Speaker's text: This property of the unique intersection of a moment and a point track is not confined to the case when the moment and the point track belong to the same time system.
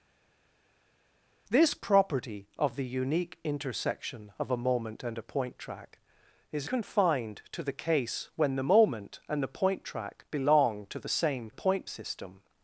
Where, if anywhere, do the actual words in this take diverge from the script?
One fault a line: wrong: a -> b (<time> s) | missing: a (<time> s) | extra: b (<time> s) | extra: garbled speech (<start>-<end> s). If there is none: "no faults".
missing: not (6.7 s)
wrong: time -> point (11.5 s)